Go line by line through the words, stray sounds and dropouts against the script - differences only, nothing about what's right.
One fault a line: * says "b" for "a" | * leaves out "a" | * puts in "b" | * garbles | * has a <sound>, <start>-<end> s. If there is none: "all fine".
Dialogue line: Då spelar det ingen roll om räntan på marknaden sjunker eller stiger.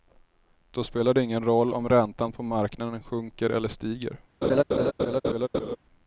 * has a laugh, 4.4-5.8 s